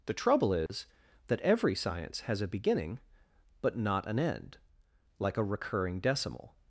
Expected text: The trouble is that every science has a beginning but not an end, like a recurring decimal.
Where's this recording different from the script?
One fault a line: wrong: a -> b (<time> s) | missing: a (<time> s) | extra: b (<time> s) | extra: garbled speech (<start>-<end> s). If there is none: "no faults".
no faults